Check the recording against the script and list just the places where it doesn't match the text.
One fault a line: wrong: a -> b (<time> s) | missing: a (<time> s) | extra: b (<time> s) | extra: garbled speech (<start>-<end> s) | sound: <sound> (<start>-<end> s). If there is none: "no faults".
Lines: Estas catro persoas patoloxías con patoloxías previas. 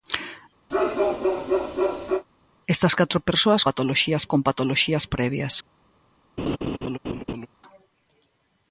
sound: bark (0.7-2.2 s)
sound: laugh (6.4-7.5 s)